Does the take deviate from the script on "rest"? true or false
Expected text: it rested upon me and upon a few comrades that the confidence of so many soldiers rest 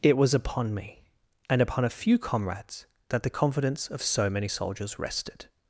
true